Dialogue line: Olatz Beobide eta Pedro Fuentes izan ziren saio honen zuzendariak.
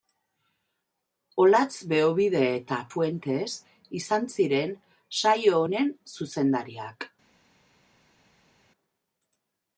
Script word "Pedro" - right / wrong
wrong